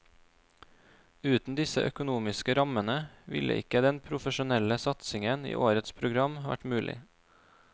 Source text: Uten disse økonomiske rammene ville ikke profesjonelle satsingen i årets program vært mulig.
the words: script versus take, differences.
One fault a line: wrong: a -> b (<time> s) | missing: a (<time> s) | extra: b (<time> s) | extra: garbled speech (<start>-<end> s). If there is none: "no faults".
extra: den (3.9 s)